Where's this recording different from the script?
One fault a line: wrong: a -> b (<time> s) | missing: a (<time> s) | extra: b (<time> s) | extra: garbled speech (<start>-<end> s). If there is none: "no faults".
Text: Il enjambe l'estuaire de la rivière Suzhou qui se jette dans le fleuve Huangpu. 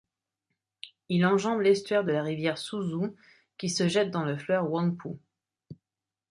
no faults